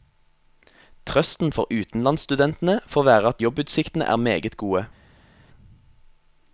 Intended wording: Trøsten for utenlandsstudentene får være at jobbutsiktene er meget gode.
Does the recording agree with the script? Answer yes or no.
yes